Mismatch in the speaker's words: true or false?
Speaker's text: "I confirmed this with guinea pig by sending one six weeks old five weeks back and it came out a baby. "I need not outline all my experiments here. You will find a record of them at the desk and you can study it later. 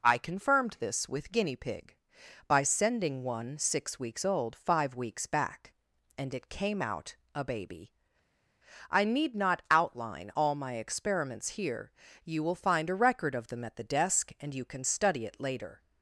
false